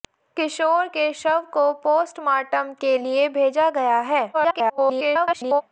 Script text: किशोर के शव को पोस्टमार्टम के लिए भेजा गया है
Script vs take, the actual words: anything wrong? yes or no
yes